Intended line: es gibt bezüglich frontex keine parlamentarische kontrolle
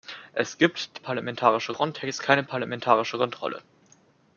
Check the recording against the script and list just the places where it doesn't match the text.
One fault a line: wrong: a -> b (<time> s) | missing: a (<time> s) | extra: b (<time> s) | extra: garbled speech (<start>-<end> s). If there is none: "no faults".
wrong: bezüglich -> parlamentarische (1.0 s)